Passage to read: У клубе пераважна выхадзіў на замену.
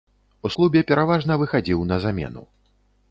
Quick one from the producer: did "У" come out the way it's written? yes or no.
yes